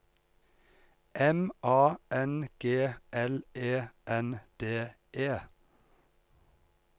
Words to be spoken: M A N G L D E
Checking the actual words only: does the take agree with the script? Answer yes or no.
no